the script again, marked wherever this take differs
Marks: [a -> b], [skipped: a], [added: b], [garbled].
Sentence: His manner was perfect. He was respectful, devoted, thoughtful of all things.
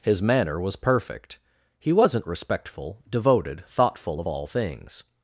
His manner was perfect. He [was -> wasn't] respectful, devoted, thoughtful of all things.